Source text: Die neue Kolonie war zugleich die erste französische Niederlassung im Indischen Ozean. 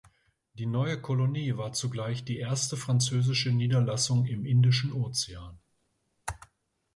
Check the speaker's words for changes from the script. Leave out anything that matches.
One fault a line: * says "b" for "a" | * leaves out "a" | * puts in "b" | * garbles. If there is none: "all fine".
all fine